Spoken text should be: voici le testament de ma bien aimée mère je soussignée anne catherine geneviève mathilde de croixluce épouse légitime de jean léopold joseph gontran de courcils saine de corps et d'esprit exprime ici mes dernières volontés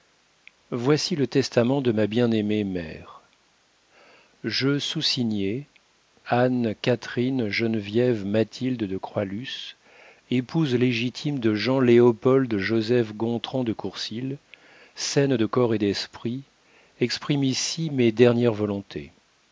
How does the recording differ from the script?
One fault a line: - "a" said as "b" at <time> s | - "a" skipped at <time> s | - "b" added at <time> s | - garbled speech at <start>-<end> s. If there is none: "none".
none